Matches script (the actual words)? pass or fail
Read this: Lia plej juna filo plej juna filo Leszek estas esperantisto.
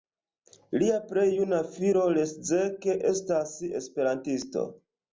fail